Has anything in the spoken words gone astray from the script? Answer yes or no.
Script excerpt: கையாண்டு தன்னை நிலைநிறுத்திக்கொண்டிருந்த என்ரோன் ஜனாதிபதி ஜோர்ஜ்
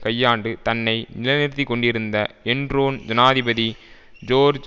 no